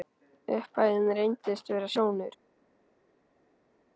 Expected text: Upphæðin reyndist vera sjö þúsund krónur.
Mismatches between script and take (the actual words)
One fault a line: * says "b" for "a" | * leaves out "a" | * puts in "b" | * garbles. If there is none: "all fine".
* leaves out "sjö þúsund"